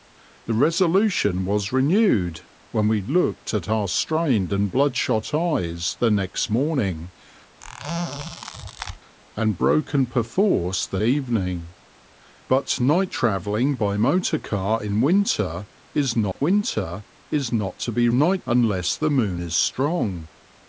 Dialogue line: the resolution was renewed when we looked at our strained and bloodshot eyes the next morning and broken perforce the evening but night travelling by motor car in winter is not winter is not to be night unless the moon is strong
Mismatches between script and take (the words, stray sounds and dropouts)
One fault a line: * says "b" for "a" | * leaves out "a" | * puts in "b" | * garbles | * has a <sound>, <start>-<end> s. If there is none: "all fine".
* has a squeak, 7.6-9.0 s
* has a dropout, 16.3-16.4 s